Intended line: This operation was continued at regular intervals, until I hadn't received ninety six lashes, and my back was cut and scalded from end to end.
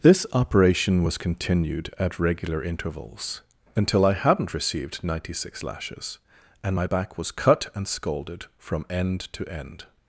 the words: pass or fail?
pass